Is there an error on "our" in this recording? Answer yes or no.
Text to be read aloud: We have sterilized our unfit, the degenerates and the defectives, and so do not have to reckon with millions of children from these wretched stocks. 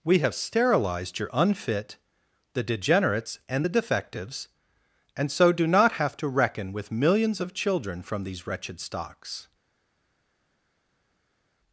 yes